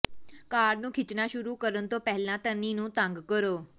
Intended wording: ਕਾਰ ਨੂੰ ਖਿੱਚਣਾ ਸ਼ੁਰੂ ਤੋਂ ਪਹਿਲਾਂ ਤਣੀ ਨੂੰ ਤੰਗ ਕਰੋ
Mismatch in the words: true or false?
true